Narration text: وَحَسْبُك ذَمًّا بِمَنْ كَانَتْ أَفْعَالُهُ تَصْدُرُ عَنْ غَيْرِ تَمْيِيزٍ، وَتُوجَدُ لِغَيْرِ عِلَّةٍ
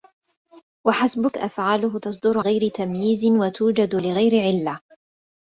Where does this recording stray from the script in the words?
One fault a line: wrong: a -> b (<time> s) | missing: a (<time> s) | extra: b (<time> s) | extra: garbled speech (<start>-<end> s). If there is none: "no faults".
missing: ذَمًّا بِمَنْ كَانَتْ (1.4 s)
missing: عَنْ (2.4 s)